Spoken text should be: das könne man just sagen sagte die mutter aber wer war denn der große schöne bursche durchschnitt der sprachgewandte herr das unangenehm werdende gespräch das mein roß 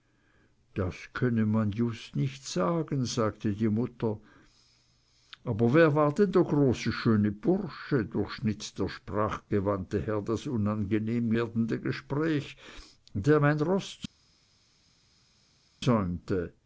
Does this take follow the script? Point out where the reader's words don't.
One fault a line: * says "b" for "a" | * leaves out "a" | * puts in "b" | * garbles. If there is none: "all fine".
* puts in "nicht"
* says "der" for "das"